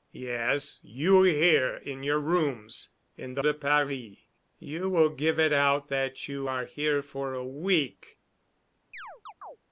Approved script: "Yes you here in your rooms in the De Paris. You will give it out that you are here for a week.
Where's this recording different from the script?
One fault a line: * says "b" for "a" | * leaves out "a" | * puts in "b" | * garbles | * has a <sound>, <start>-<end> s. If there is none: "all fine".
* has a chirp, 8.9-9.6 s